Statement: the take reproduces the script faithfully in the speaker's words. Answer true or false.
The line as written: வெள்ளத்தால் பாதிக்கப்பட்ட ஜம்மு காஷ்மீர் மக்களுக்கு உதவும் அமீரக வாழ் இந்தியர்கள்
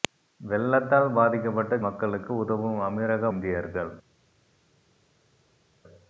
false